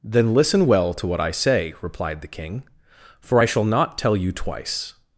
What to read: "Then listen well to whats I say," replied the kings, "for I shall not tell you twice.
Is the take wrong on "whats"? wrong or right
wrong